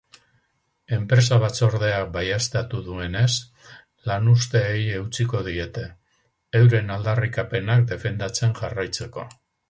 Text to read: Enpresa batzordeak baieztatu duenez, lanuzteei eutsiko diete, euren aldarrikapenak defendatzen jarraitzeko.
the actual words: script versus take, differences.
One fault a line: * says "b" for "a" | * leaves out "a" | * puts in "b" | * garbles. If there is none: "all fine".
all fine